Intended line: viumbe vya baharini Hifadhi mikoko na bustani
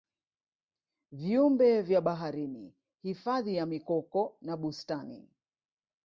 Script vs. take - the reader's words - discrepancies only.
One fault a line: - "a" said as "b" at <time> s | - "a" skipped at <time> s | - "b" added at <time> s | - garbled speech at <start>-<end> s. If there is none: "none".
- "ya" added at 3.5 s